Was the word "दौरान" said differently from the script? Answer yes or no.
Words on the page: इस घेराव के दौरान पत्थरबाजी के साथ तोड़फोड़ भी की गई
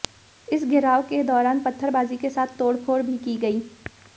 no